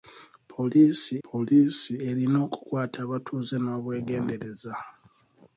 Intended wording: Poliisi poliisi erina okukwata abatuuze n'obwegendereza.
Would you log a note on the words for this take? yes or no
no